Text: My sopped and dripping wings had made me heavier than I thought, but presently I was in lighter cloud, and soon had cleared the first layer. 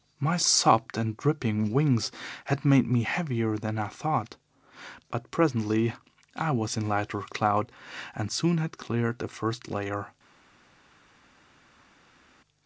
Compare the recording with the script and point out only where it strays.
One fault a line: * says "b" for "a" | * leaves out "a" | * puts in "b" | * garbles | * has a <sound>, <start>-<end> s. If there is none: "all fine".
all fine